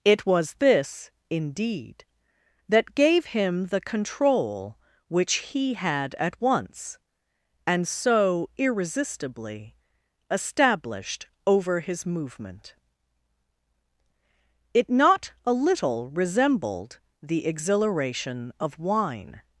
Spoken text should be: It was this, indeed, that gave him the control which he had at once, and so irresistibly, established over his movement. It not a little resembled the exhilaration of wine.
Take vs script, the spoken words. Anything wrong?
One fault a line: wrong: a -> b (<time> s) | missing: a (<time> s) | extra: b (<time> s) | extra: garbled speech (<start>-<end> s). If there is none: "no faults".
no faults